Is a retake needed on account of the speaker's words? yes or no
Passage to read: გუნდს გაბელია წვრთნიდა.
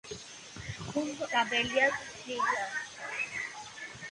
no